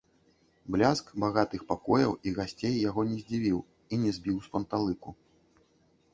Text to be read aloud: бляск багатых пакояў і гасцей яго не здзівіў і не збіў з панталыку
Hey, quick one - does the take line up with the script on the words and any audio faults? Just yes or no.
yes